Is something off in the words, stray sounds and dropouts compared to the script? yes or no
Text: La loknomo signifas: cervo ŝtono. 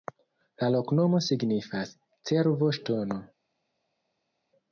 no